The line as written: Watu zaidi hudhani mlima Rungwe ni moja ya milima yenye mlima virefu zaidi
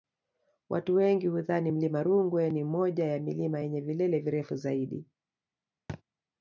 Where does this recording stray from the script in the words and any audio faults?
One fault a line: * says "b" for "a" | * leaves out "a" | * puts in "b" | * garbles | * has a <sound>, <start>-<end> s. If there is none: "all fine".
* says "wengi" for "zaidi"
* says "vilele" for "mlima"
* has a thud, 5.9-6.0 s